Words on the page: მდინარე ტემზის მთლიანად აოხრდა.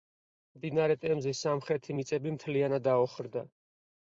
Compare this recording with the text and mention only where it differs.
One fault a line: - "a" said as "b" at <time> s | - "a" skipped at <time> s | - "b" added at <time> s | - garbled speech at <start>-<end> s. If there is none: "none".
- "სამხრეთი მიწები" added at 1.5 s